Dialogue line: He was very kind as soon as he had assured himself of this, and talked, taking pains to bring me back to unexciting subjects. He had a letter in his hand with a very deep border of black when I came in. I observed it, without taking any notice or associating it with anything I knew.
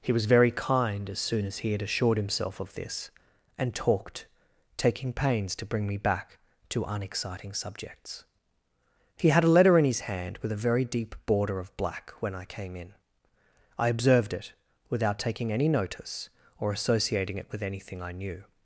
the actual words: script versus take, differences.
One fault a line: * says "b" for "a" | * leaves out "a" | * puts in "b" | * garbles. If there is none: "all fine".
all fine